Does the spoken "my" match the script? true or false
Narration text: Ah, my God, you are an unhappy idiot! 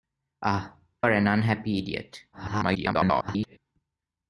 false